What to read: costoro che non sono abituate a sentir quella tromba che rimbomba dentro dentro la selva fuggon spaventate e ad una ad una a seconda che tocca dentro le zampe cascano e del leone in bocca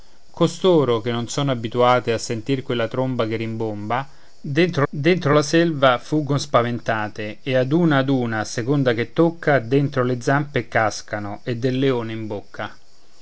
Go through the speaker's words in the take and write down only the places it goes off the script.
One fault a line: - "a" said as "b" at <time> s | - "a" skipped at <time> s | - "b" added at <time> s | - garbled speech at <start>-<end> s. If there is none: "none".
none